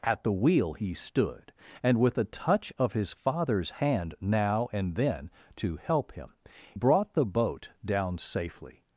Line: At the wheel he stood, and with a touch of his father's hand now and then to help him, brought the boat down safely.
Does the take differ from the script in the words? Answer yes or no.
no